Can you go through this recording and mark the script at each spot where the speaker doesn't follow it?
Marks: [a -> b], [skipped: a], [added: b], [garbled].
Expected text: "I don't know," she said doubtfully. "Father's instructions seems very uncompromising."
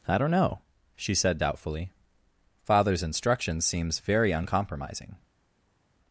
"I don't know," she said doubtfully. "Father's instructions seems very uncompromising."